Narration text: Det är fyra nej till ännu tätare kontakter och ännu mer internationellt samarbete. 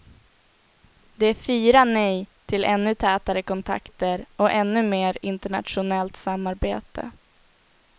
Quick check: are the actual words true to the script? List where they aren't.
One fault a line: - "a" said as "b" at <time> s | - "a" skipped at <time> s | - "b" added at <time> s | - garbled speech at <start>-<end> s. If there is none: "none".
none